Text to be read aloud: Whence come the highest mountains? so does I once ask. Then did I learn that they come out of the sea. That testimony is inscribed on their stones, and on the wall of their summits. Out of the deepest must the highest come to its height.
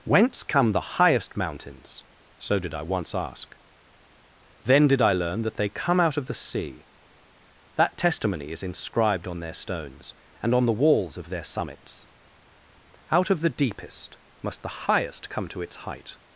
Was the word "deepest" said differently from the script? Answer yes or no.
no